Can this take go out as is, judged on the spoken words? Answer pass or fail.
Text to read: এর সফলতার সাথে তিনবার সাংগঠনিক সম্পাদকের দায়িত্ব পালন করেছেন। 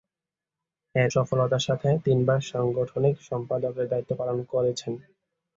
pass